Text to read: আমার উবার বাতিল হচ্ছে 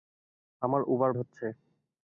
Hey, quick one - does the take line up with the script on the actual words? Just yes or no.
no